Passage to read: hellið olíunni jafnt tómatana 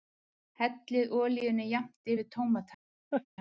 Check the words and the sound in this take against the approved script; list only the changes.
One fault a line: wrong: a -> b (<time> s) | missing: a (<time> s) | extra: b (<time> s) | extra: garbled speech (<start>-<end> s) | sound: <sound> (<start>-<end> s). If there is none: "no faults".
extra: yfir (2.1 s)
sound: laugh (3.1-3.3 s)